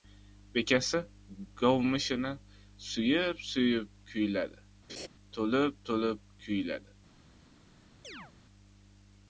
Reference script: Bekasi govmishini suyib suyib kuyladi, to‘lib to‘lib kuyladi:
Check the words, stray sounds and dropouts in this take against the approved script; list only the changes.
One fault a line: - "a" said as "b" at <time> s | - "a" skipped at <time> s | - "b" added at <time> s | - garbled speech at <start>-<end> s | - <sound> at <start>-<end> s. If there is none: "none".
- laugh at 4.9-5.1 s
- chirp at 8.0-8.3 s